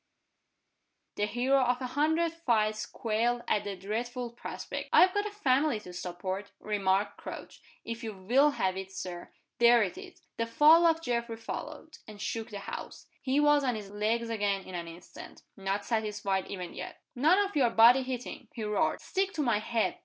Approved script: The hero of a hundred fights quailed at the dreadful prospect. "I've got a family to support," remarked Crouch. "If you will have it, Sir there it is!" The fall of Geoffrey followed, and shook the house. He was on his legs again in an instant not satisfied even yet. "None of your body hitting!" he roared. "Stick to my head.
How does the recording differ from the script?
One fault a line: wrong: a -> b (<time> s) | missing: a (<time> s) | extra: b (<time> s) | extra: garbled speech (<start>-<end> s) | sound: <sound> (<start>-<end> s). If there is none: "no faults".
no faults